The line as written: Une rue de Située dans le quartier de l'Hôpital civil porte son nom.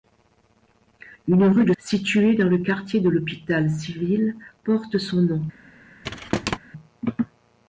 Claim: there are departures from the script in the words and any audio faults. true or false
true